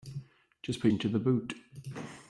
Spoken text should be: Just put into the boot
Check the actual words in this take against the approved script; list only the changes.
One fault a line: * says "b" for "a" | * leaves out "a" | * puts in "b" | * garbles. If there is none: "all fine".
all fine